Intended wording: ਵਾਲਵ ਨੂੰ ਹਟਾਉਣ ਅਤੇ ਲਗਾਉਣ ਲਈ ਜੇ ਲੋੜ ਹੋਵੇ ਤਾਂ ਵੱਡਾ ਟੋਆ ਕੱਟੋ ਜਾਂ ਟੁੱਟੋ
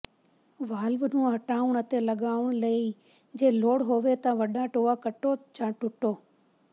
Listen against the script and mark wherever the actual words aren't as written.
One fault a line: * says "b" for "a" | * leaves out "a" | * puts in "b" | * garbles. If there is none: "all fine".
all fine